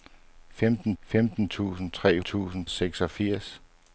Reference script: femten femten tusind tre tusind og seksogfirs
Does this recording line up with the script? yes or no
yes